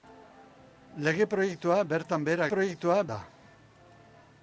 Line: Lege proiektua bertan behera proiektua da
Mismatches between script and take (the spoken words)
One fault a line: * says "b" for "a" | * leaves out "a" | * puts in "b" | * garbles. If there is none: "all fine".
all fine